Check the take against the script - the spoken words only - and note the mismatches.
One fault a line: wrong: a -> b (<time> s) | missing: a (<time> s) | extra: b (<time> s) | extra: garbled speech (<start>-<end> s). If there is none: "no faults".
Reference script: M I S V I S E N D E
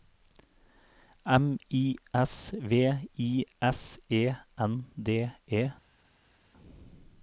no faults